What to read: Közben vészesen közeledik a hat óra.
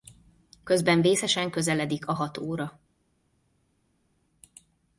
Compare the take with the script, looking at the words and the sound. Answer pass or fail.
pass